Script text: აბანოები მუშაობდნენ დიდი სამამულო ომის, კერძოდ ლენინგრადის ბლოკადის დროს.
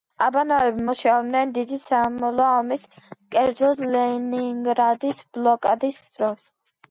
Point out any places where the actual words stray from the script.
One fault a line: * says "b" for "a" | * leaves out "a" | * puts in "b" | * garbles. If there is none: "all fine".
all fine